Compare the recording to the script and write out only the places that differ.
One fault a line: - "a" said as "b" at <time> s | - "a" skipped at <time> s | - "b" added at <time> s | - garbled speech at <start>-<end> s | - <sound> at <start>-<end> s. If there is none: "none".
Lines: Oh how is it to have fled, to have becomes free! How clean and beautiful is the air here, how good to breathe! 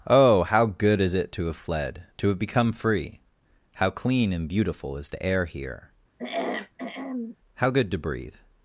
- "good" added at 0.7 s
- "becomes" said as "become" at 2.4 s
- throat clearing at 6.2-7.4 s